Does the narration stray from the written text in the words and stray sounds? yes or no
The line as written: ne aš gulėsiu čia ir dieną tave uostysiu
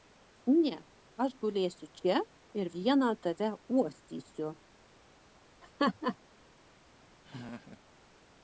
yes